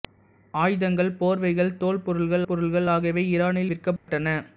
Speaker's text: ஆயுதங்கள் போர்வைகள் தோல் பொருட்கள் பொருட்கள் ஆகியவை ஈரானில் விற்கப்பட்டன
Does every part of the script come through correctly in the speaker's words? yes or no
yes